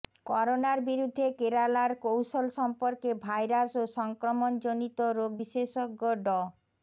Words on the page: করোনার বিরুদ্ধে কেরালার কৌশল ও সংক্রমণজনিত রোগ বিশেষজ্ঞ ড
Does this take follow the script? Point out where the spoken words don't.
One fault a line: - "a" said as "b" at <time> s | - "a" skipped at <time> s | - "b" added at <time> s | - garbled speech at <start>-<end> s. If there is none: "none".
- "সম্পর্কে ভাইরাস" added at 2.6 s